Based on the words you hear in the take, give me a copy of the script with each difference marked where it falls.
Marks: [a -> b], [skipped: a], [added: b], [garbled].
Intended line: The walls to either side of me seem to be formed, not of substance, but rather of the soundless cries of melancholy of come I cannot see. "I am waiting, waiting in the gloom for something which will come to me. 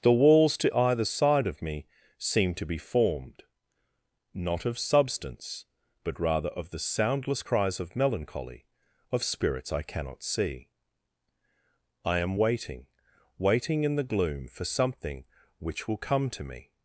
The walls to either side of me seem to be formed, not of substance, but rather of the soundless cries of melancholy of [come -> spirits] I cannot see. "I am waiting, waiting in the gloom for something which will come to me.